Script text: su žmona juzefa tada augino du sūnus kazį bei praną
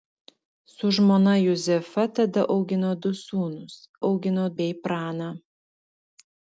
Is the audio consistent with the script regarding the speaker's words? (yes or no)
no